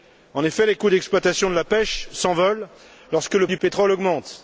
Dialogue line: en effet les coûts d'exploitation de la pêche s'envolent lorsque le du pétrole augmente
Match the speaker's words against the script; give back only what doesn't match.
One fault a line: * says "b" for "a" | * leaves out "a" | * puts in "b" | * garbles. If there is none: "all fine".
all fine